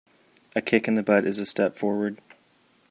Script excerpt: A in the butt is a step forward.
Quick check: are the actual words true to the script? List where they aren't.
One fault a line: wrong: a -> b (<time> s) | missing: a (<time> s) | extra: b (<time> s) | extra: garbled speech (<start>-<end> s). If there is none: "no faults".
extra: kick (0.6 s)